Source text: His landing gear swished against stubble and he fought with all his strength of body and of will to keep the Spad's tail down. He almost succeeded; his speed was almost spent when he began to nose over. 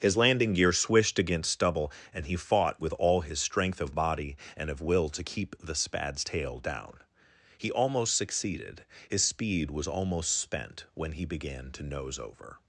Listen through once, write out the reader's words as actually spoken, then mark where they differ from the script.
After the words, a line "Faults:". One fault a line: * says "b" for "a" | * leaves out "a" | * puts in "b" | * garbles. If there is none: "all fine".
His landing gear swished against stubble and he fought with all his strength of body and of will to keep the Spad's tail down. He almost succeeded; his speed was almost spent when he began to nose over.
Faults:
all fine